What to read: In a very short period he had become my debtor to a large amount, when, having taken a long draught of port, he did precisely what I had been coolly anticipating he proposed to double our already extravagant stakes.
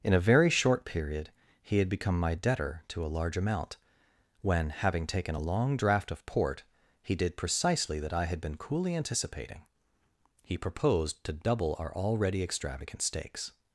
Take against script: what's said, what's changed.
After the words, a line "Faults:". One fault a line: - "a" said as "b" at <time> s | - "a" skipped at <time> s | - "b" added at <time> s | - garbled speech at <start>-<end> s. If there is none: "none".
In a very short period he had become my debtor to a large amount, when, having taken a long draught of port, he did precisely that I had been coolly anticipating he proposed to double our already extravagant stakes.
Faults:
- "what" said as "that" at 8.0 s